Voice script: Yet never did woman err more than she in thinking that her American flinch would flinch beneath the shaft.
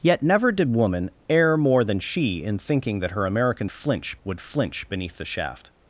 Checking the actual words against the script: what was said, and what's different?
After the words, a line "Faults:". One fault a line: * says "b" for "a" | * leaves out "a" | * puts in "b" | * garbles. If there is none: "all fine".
Yet never did woman err more than she in thinking that her American flinch would flinch beneath the shaft.
Faults:
all fine